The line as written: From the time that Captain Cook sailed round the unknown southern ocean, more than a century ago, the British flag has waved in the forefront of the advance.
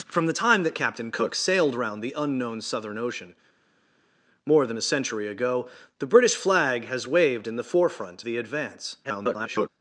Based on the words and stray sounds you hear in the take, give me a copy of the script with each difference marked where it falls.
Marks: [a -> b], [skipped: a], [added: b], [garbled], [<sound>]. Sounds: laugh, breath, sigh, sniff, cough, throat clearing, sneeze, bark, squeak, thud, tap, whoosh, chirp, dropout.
From the time that Captain Cook sailed round the unknown southern ocean, more than a century ago, the British flag has waved in the forefront [skipped: of] the advance. [garbled]